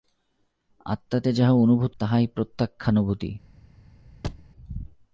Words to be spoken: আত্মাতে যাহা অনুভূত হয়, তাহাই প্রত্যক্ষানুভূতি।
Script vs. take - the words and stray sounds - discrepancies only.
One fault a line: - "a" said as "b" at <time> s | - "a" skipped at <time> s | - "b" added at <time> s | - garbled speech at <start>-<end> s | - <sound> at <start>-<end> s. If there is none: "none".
- "হয়" skipped at 1.9 s
- thud at 4.2-4.5 s